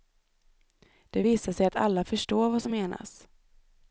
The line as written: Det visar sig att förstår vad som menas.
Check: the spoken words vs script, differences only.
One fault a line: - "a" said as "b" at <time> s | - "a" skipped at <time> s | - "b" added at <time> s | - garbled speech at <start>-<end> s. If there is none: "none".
- "alla" added at 1.7 s